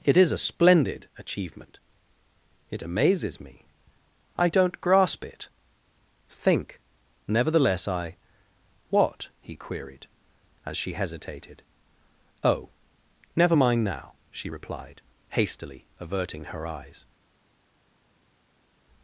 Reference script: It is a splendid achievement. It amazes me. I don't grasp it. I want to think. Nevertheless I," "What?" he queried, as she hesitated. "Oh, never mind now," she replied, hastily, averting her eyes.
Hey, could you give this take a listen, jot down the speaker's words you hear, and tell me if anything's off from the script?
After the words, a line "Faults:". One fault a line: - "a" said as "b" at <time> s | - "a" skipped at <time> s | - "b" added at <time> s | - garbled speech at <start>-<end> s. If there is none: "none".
It is a splendid achievement. It amazes me. I don't grasp it. think. Nevertheless I," "What?" he queried, as she hesitated. "Oh, never mind now," she replied, hastily, averting her eyes.
Faults:
- "I want to" skipped at 5.5 s